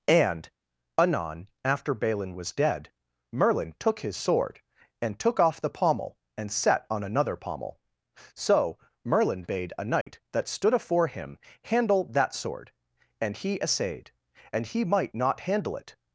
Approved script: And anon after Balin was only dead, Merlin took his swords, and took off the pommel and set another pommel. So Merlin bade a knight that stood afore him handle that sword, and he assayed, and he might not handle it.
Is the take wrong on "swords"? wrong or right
wrong